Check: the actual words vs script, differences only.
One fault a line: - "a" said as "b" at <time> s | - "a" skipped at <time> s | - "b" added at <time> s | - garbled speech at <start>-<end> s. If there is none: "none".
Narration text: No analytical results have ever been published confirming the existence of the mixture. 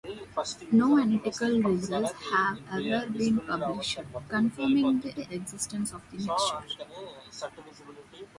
- "the" added at 5.1 s